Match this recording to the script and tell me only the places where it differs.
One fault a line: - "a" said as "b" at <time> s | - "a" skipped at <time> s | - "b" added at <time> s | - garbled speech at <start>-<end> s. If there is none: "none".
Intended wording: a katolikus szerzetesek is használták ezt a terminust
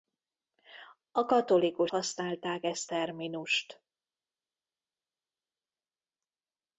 - "szerzetesek is" skipped at 1.9 s
- "a" skipped at 2.9 s